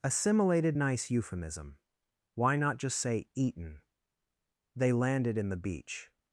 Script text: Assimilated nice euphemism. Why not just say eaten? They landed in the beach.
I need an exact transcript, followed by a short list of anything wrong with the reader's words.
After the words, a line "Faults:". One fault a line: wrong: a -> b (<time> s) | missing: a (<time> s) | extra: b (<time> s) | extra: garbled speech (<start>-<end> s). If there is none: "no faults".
Assimilated nice euphemism. Why not just say eaten? They landed in the beach.
Faults:
no faults